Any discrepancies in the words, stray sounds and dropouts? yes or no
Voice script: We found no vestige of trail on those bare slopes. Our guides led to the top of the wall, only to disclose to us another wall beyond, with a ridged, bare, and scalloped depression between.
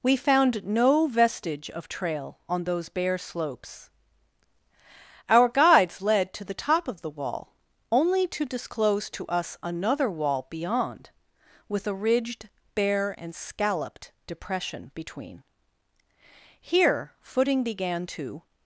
yes